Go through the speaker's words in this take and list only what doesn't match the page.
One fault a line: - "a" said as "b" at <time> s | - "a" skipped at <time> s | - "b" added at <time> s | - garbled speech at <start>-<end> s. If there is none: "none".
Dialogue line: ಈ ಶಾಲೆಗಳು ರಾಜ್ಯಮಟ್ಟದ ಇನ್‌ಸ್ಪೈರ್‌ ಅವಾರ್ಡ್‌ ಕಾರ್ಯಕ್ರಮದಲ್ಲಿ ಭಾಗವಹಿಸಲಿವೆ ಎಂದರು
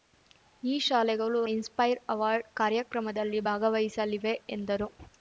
- "ರಾಜ್ಯಮಟ್ಟದ" skipped at 1.4 s